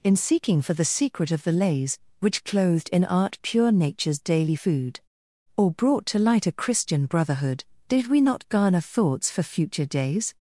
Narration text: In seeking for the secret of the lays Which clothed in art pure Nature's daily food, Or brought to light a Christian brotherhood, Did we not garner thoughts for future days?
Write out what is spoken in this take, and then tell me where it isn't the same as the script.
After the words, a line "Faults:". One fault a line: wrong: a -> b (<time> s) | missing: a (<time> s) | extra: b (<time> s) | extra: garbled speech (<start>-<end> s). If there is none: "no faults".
In seeking for the secret of the lays Which clothed in art pure Nature's daily food, Or brought to light a Christian brotherhood, Did we not garner thoughts for future days?
Faults:
no faults